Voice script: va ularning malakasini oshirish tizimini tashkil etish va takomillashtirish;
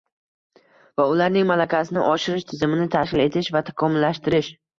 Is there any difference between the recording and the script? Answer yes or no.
no